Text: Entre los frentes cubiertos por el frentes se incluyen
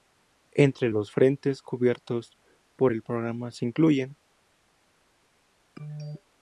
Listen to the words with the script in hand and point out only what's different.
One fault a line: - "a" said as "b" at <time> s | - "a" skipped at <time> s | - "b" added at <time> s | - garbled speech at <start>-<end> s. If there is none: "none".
- "frentes" said as "programa" at 3.0 s